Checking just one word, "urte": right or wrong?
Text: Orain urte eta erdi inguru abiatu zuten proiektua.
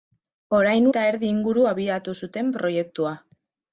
wrong